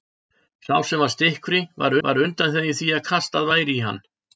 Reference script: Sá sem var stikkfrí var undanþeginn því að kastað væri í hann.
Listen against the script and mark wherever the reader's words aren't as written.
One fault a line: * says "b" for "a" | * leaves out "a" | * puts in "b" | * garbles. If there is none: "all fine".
* puts in "var"